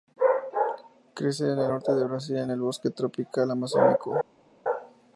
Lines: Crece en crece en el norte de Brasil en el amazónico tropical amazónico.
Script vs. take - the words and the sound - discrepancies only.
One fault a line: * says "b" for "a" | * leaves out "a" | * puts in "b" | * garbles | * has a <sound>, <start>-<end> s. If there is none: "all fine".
* leaves out "crece en"
* says "bosque" for "amazónico"